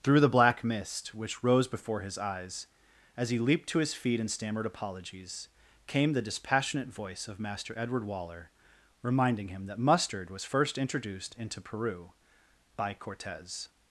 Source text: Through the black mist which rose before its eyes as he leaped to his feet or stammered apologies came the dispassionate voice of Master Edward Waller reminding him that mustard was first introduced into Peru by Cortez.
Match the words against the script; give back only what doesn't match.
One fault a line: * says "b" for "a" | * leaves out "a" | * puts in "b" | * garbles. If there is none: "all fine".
* says "his" for "its"
* says "and" for "or"